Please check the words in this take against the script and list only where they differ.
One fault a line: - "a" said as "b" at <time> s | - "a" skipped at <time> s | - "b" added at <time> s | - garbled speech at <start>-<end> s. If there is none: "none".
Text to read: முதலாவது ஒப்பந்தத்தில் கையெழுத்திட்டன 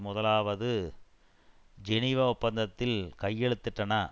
- "ஜெனீவா" added at 1.8 s